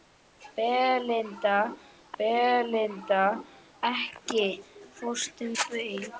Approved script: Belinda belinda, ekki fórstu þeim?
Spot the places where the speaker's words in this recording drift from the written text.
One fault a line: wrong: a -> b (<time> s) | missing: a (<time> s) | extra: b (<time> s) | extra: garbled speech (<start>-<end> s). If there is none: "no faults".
no faults